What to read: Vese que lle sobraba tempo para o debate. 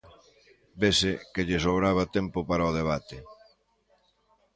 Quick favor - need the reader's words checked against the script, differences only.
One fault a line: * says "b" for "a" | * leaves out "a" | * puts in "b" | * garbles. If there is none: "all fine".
all fine